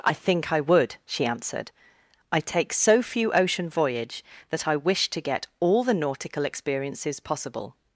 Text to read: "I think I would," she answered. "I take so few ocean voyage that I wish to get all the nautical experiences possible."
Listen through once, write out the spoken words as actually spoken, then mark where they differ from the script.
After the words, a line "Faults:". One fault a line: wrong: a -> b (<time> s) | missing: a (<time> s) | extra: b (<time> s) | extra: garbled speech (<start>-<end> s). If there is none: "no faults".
"I think I would," she answered. "I take so few ocean voyage that I wish to get all the nautical experiences possible."
Faults:
no faults